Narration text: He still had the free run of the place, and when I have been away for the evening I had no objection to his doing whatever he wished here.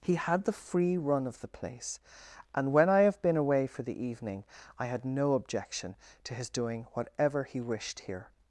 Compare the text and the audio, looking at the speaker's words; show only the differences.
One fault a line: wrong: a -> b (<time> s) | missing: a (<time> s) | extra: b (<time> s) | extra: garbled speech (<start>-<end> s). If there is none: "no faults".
missing: still (0.1 s)